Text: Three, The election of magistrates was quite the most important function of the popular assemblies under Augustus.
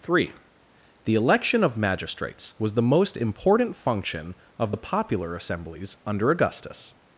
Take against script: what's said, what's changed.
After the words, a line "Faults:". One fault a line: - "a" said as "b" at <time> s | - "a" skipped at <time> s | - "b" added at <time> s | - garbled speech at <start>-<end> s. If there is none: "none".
Three, The election of magistrates was the most important function of the popular assemblies under Augustus.
Faults:
- "quite" skipped at 2.7 s